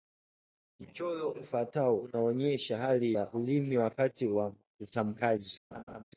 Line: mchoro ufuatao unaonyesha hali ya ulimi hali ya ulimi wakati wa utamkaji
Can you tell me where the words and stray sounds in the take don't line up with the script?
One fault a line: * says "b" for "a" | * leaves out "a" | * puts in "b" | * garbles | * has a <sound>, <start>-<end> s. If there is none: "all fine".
* leaves out "hali ya ulimi"
* has a laugh, 5.7-6.0 s